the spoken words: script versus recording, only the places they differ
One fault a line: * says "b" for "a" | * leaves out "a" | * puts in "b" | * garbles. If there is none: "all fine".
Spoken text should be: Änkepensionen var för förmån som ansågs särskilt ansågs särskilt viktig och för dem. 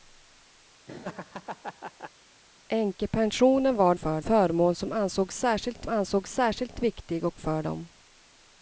all fine